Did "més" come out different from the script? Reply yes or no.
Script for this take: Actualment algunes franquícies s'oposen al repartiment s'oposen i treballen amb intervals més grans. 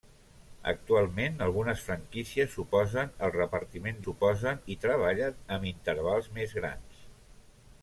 no